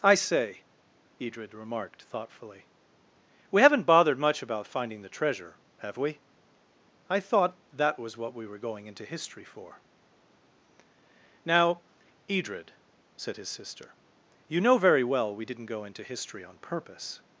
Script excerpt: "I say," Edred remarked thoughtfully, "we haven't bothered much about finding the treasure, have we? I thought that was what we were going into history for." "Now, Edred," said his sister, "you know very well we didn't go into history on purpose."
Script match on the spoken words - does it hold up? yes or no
yes